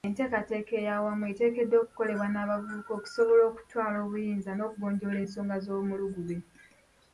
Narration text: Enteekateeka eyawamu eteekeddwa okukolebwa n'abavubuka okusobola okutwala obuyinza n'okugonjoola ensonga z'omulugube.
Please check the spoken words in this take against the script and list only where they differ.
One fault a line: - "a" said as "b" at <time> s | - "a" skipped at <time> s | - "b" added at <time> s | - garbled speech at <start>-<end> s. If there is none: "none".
none